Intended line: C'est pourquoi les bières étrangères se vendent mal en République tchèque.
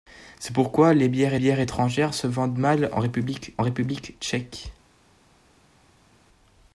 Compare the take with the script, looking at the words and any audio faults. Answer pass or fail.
fail